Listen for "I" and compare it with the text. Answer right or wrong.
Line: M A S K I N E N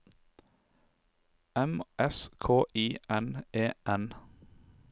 right